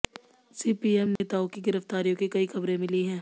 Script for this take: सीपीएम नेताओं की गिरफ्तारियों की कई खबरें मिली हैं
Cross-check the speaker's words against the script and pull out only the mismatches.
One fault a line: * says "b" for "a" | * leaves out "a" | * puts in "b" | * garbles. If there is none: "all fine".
all fine